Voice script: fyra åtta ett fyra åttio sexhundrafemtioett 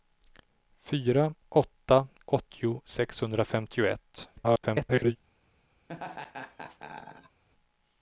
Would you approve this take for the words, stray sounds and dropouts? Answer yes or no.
no